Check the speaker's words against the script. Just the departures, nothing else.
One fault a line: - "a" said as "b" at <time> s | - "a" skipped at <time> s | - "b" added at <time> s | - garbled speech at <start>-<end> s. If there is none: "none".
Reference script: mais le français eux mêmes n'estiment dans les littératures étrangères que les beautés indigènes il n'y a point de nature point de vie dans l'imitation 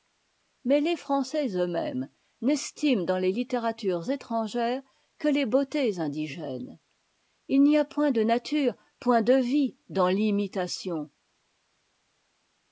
- "le" said as "les" at 0.8 s